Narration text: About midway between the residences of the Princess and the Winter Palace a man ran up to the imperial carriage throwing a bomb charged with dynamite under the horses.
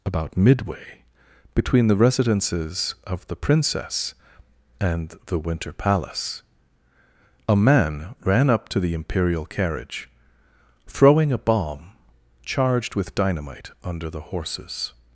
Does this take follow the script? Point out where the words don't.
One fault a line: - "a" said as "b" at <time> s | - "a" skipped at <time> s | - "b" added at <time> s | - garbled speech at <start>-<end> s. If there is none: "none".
none